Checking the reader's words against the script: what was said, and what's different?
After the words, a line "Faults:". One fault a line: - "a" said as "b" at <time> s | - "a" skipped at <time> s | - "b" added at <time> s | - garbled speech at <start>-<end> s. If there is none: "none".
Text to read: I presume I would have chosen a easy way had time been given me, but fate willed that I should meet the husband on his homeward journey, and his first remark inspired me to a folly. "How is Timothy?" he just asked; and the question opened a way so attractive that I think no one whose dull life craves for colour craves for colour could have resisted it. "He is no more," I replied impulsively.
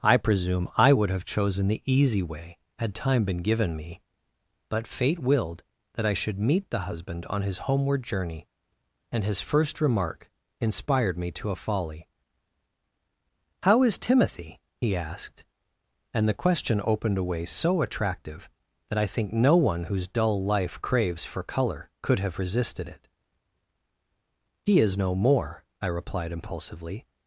I presume I would have chosen the easy way had time been given me, but fate willed that I should meet the husband on his homeward journey, and his first remark inspired me to a folly. "How is Timothy?" he asked; and the question opened a way so attractive that I think no one whose dull life craves for colour could have resisted it. "He is no more," I replied impulsively.
Faults:
- "a" said as "the" at 1.7 s
- "just" skipped at 15.0 s
- "craves for colour" skipped at 21.9 s